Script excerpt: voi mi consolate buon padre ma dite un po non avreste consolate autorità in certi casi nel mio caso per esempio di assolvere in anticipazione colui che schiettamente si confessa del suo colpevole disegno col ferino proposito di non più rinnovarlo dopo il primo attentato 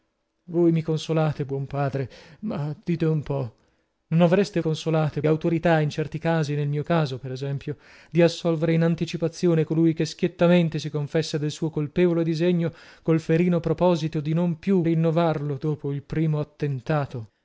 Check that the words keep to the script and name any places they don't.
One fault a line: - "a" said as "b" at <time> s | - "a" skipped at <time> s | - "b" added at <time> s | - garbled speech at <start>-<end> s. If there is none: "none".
none